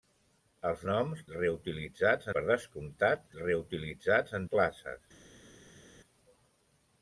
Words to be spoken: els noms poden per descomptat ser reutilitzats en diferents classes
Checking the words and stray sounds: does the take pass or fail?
fail